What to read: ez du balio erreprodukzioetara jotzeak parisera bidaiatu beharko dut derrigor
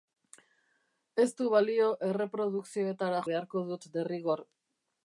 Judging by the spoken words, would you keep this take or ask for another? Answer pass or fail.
fail